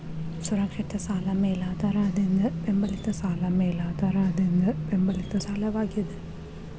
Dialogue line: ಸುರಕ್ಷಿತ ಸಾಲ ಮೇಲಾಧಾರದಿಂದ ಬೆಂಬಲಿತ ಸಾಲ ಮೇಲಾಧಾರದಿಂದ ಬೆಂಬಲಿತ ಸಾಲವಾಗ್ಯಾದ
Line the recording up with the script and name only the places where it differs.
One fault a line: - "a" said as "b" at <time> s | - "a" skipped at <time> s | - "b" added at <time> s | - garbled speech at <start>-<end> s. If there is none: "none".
none